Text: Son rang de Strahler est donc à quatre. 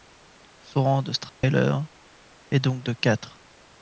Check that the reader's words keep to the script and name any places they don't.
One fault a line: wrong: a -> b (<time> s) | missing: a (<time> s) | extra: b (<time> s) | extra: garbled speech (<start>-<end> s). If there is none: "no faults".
wrong: à -> de (2.8 s)